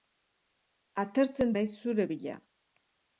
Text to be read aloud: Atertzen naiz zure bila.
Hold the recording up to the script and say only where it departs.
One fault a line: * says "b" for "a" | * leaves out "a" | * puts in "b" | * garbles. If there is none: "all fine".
all fine